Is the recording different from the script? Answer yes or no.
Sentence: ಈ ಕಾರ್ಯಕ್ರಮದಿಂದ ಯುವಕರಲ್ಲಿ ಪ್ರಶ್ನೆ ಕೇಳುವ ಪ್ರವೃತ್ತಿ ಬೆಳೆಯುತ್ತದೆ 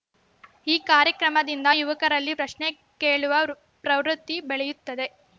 no